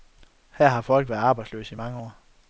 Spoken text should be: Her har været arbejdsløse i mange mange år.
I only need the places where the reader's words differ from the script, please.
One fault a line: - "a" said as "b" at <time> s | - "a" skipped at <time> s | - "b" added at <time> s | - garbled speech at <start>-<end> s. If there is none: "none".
- "folk" added at 0.8 s
- "mange" skipped at 2.0 s